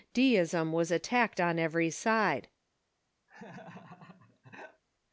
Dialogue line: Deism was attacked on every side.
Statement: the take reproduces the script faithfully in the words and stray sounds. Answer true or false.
false